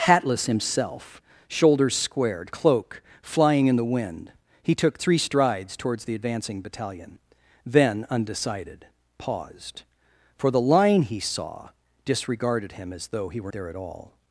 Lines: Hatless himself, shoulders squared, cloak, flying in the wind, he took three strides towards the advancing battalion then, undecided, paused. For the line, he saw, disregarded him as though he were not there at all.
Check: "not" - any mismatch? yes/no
yes